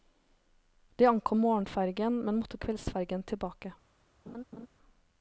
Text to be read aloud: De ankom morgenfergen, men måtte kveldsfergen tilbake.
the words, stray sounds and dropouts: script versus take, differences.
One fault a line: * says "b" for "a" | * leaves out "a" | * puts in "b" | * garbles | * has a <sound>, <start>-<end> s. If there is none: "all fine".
* has a laugh, 4.3-4.7 s